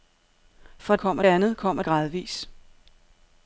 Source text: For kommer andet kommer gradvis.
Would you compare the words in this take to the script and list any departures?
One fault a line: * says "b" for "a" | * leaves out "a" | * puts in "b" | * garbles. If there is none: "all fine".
all fine